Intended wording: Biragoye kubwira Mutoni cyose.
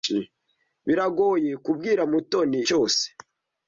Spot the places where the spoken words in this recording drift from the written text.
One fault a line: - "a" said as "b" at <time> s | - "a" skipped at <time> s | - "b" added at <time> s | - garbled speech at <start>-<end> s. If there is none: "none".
none